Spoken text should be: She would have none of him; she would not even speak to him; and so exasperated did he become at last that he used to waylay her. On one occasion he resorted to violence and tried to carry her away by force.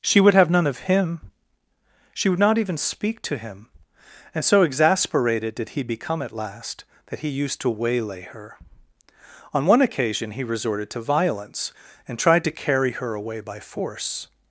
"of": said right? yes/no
yes